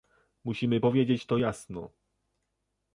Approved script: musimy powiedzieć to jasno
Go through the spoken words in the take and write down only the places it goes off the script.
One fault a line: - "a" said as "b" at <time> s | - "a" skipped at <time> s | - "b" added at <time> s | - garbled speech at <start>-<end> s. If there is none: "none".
none